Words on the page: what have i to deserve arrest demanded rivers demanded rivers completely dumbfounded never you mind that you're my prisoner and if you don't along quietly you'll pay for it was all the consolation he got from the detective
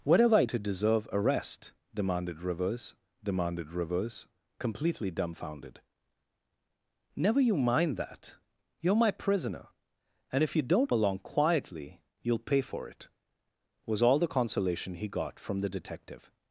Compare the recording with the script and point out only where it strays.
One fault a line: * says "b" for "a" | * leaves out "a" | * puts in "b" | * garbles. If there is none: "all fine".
all fine